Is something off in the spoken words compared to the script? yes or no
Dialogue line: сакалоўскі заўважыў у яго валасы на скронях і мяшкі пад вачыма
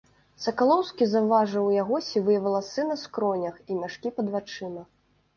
yes